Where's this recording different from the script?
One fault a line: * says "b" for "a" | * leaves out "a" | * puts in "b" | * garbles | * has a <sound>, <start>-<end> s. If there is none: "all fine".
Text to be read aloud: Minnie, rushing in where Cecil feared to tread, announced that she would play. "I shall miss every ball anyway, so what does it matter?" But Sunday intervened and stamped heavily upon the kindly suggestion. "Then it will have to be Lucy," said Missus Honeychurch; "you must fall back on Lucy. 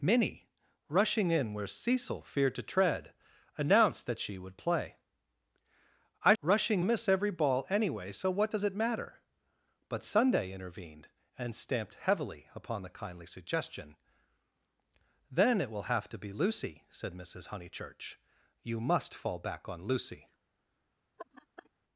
* says "rushing" for "shall"
* has a laugh, 21.2-21.7 s